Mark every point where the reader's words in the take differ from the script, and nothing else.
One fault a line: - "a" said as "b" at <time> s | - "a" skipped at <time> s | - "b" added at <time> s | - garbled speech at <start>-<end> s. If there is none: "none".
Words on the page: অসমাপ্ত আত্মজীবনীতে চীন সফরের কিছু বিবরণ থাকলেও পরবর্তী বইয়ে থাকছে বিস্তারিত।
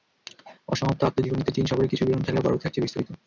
- "বইয়ে" skipped at 2.7 s